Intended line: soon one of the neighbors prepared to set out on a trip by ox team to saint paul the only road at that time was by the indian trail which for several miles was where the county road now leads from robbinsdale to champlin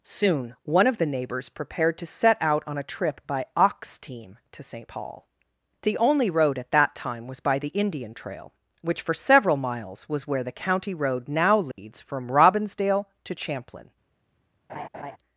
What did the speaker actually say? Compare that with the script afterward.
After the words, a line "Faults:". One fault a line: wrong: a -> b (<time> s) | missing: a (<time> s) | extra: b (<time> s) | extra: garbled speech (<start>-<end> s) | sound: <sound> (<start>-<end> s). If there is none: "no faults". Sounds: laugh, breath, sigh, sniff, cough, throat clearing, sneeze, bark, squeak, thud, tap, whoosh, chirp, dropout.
soon one of the neighbors prepared to set out on a trip by ox team to saint paul the only road at that time was by the indian trail which for several miles was where the county road now leads from robbinsdale to champlin
Faults:
sound: dropout (11.7-11.8 s)
sound: laugh (14.7-15.2 s)